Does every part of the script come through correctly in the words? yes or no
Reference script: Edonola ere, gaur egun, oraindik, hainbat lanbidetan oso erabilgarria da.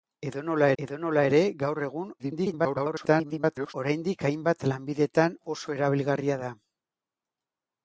no